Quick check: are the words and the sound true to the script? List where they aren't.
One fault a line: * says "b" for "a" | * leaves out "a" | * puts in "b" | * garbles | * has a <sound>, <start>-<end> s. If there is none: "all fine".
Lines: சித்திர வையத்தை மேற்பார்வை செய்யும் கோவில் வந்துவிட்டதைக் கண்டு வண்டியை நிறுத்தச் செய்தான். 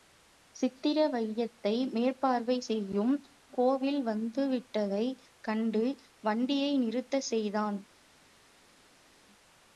all fine